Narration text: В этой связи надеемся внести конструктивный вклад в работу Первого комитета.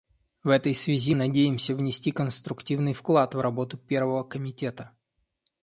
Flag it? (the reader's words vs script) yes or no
no